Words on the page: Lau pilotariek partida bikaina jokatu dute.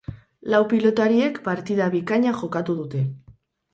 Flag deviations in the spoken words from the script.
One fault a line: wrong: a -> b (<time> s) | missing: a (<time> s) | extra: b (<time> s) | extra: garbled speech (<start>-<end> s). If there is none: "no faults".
no faults